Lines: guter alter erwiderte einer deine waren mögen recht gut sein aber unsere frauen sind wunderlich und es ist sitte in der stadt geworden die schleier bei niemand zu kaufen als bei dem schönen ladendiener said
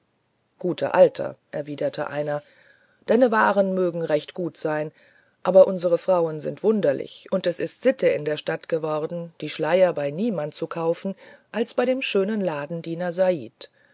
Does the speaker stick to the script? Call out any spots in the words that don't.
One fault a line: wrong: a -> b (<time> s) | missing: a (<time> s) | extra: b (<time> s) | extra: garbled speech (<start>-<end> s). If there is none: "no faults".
no faults